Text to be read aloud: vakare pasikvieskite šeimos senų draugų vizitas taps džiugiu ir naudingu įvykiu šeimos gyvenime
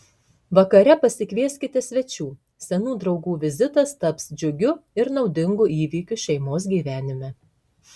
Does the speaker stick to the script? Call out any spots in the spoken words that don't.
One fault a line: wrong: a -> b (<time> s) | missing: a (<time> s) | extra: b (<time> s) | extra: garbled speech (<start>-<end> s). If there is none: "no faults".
wrong: šeimos -> svečių (1.9 s)